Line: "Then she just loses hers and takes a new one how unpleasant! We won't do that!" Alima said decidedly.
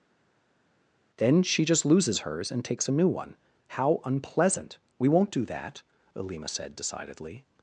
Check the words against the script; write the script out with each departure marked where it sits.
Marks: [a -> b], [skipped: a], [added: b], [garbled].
"Then she just loses hers and takes a new one how unpleasant! We won't do that!" Alima said decidedly.